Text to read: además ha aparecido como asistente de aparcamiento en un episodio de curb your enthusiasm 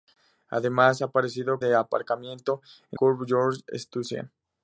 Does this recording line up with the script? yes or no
no